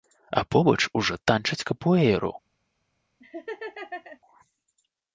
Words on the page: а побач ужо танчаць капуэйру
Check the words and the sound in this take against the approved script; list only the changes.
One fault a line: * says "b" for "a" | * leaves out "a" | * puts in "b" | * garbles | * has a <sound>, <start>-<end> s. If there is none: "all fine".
* has a laugh, 3.2-4.2 s